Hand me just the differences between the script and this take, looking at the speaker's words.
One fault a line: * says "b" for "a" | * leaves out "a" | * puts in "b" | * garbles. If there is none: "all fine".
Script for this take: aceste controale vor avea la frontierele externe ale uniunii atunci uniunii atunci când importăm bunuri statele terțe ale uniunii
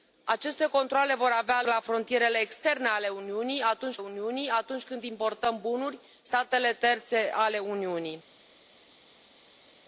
all fine